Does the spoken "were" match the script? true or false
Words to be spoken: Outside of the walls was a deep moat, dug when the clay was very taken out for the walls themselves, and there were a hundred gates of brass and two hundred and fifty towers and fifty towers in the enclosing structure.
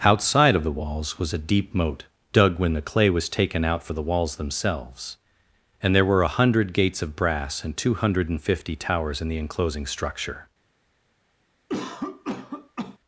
true